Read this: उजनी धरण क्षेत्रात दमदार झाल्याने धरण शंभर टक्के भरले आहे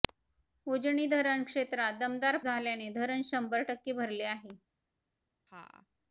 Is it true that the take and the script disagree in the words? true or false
false